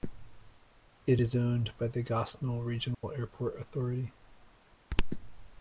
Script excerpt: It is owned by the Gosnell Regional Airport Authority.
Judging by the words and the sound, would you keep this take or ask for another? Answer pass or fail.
fail